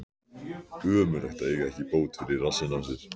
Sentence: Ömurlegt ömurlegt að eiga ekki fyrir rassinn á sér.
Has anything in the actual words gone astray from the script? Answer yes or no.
yes